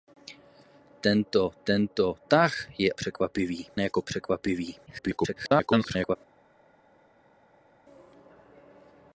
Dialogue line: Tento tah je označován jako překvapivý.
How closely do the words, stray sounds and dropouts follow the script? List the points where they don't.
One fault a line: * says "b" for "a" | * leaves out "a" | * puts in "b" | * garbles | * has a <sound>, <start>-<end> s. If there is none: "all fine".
* puts in "tento"
* says "překvapivý" for "označován"
* garbles